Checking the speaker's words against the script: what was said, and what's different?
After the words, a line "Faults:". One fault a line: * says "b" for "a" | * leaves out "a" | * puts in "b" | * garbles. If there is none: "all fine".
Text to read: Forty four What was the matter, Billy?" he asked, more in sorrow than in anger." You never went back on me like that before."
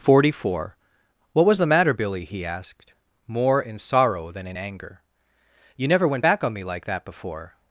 Forty four What was the matter, Billy?" he asked, more in sorrow than in anger." You never went back on me like that before."
Faults:
all fine